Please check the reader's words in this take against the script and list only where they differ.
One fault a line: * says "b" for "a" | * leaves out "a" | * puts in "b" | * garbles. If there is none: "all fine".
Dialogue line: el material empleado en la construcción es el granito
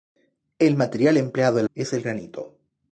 * leaves out "la construcción"